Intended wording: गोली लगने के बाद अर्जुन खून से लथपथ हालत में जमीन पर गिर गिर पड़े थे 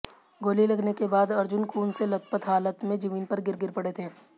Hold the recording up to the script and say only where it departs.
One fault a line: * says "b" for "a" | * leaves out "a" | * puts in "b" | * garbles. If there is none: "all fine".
all fine